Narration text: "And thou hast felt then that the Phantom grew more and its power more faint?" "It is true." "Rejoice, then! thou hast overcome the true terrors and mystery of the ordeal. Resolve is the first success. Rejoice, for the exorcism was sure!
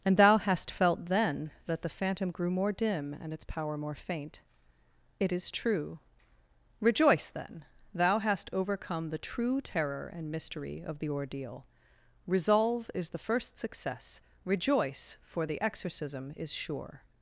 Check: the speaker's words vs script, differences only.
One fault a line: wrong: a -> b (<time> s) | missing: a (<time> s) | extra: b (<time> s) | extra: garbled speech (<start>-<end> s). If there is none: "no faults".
extra: dim (2.7 s)
wrong: terrors -> terror (9.6 s)
wrong: was -> is (16.4 s)